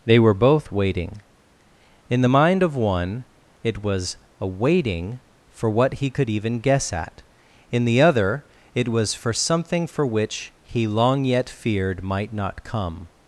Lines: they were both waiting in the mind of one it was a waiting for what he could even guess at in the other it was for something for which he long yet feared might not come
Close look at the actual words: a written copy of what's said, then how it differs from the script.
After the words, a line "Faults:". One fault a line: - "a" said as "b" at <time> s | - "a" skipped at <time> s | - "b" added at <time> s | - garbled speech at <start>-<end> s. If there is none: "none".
they were both waiting in the mind of one it was a waiting for what he could even guess at in the other it was for something for which he long yet feared might not come
Faults:
none